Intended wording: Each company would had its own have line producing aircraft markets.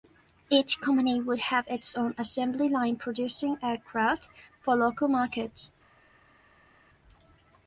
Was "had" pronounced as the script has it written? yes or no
no